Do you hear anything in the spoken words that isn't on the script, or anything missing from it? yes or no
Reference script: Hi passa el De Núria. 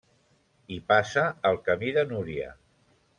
yes